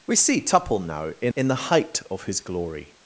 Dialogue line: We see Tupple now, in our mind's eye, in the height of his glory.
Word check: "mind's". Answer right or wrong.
wrong